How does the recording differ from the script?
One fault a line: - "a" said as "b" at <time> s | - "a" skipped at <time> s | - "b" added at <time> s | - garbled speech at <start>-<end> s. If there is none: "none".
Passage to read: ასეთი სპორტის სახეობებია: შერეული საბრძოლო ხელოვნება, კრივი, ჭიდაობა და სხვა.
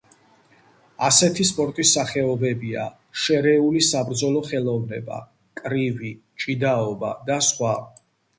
none